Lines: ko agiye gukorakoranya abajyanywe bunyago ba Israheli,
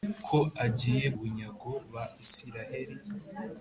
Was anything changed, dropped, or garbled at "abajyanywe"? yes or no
yes